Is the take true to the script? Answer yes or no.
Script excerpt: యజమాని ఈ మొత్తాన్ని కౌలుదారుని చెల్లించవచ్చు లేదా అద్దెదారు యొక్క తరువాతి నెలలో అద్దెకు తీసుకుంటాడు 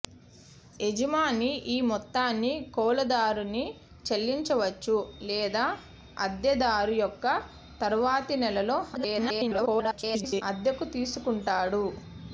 no